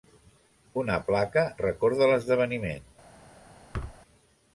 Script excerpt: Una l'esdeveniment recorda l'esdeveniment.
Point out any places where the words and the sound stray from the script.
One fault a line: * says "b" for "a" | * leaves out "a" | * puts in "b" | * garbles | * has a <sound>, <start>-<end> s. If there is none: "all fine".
* says "placa" for "l'esdeveniment"
* has a thud, 3.7-4.0 s